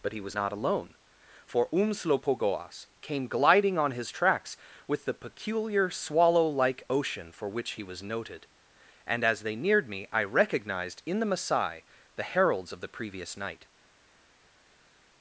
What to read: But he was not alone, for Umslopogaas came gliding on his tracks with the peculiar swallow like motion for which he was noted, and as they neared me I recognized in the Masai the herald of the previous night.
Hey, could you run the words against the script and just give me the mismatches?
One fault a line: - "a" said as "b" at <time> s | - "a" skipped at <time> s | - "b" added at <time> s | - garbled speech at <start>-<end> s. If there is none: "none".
- "motion" said as "ocean" at 6.9 s
- "herald" said as "heralds" at 12.2 s